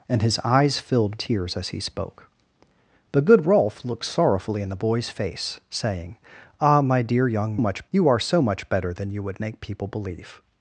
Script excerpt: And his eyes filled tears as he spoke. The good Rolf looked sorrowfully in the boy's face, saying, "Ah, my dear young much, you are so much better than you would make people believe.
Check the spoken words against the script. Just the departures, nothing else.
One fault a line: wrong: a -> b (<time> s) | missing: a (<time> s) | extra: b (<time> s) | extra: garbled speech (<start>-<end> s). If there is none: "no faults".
no faults